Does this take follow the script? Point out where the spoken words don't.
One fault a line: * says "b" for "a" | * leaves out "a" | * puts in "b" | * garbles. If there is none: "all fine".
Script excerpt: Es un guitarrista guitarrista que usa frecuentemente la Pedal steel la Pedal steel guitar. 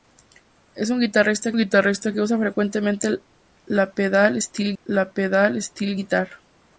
all fine